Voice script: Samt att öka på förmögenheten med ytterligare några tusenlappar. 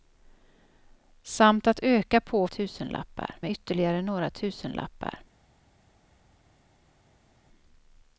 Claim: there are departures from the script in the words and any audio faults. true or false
true